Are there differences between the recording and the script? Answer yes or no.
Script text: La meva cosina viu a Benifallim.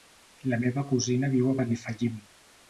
no